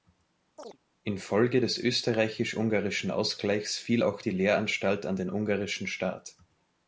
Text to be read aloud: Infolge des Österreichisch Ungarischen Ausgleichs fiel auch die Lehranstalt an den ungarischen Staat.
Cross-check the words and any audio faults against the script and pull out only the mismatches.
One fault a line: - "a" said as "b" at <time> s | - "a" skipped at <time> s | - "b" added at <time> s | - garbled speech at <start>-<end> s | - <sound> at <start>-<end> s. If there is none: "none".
- chirp at 0.6-0.8 s